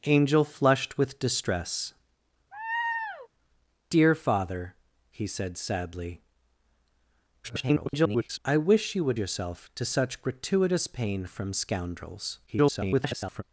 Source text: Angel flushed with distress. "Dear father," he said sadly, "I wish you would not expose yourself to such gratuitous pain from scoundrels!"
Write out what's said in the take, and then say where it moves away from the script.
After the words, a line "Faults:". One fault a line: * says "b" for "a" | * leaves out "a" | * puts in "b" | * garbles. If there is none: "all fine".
Angel flushed with distress. "Dear father," he said sadly, [garbled] "I wish you would yourself to such gratuitous pain from scoundrels!" [garbled]
Faults:
* garbles
* leaves out "not expose"
* garbles